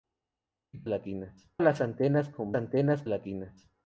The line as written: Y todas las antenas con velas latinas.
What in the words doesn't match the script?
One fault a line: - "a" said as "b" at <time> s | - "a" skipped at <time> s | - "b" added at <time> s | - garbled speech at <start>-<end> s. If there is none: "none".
- "todas" said as "latinas" at 0.9 s
- "velas" said as "antenas" at 2.6 s